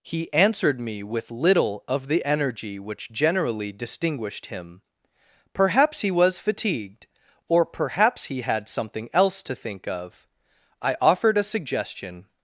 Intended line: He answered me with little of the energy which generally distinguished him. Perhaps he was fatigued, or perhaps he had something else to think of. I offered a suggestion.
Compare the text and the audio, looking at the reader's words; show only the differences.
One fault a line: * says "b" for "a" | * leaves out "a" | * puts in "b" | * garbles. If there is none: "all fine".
all fine